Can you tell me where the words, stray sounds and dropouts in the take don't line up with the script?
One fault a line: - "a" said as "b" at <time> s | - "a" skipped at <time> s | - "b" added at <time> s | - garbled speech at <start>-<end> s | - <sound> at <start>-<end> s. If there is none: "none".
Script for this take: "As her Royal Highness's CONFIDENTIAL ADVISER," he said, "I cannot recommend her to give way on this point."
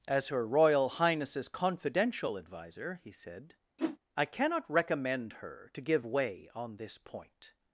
- whoosh at 3.8-4.0 s